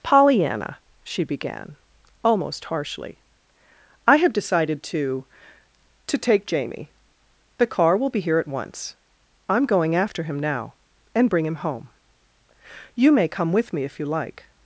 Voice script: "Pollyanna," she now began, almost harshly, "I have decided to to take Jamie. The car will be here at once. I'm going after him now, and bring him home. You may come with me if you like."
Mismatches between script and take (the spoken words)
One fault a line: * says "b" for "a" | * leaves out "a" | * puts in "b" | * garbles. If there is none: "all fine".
* leaves out "now"